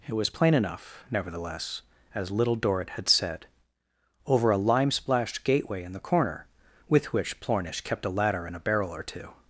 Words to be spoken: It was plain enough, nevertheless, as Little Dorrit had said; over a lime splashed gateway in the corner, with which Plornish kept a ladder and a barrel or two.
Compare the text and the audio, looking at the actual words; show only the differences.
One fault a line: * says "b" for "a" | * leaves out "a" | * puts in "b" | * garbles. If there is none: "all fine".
all fine